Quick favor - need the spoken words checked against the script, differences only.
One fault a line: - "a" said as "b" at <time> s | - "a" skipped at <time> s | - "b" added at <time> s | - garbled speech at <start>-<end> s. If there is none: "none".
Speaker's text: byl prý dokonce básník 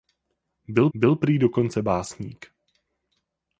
- "byl" added at 0.9 s